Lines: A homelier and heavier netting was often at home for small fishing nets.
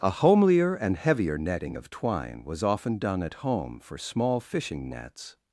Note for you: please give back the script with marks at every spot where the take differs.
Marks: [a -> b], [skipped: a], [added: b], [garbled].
A homelier and heavier netting [added: of twine] was often [added: done] at home for small fishing nets.